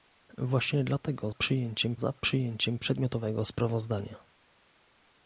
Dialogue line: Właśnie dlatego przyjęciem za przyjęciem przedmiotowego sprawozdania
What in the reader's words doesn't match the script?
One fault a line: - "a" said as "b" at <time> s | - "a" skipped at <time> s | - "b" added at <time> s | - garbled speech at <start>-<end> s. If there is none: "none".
none